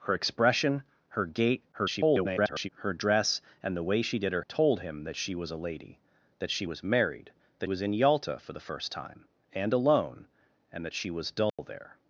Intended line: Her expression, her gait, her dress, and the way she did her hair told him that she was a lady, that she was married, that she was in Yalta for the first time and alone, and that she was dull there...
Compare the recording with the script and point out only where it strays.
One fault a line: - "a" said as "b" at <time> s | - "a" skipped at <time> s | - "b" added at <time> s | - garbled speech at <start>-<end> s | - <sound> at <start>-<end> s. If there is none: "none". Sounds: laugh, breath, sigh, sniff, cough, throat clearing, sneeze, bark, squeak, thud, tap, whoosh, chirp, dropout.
- garbled speech at 1.7-2.7 s
- "hair" skipped at 4.4 s
- "she" skipped at 7.7 s
- dropout at 11.5-11.6 s